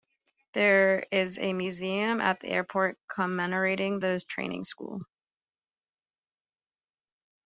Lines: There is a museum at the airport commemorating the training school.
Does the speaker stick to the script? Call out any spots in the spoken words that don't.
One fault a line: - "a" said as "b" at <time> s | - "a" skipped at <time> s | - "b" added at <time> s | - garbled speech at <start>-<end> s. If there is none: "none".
none